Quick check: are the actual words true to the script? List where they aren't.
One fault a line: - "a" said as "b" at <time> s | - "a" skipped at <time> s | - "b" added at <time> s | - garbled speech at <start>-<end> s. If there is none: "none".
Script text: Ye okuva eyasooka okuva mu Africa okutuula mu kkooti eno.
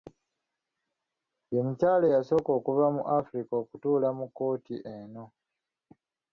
- "okuva" said as "mukyala" at 1.6 s